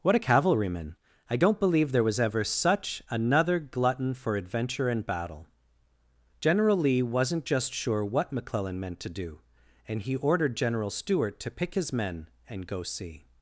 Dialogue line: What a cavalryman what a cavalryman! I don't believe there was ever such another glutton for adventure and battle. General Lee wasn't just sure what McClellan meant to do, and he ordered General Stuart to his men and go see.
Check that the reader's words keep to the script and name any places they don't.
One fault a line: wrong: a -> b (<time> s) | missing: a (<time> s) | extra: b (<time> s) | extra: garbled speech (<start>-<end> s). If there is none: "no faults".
missing: what a cavalryman (1.0 s)
extra: pick (11.5 s)